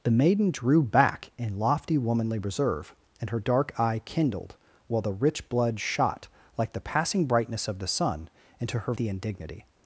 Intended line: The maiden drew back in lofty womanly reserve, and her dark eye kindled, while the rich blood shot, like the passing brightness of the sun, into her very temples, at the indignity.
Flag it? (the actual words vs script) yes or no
yes